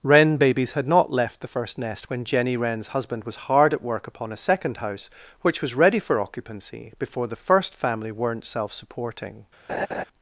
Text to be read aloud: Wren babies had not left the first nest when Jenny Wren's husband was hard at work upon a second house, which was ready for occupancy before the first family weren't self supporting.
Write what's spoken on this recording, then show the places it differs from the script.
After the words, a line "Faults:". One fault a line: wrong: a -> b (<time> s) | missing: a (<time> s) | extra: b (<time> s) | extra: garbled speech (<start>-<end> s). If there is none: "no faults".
Wren babies had not left the first nest when Jenny Wren's husband was hard at work upon a second house, which was ready for occupancy before the first family weren't self supporting.
Faults:
no faults